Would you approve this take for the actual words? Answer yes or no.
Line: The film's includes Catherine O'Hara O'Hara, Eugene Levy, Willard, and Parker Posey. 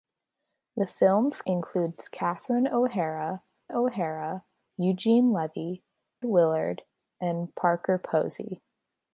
yes